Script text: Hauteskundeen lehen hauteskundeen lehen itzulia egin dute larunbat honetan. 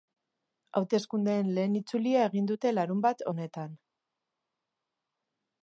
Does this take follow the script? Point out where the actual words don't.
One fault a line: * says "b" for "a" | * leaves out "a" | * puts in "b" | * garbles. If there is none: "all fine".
* leaves out "hauteskundeen lehen"